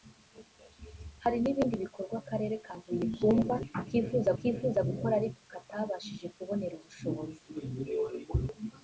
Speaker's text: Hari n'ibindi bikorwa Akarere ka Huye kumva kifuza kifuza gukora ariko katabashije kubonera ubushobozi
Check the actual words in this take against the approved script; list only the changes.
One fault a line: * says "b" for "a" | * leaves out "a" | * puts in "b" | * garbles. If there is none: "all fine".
all fine